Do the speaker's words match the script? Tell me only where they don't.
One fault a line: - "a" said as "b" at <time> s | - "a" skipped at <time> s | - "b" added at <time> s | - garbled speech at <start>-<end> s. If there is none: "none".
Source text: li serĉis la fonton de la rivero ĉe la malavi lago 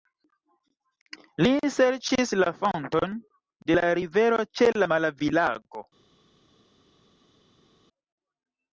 none